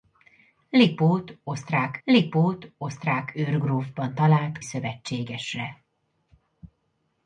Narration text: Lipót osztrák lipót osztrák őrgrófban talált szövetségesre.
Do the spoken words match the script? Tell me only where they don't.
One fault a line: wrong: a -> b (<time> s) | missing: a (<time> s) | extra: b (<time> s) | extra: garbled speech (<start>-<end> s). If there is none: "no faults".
no faults